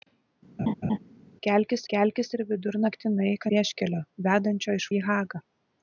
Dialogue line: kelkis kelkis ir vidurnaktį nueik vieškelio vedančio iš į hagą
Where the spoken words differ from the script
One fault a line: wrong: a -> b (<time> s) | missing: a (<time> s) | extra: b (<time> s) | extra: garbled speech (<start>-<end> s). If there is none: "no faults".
no faults